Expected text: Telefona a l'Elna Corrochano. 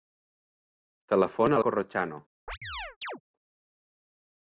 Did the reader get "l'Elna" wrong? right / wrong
wrong